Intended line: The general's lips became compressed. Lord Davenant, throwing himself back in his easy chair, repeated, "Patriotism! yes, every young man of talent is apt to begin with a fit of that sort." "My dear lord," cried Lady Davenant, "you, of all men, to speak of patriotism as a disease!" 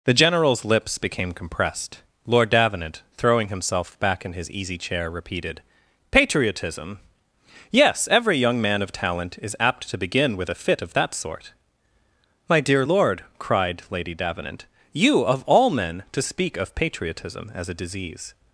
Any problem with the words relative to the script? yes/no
no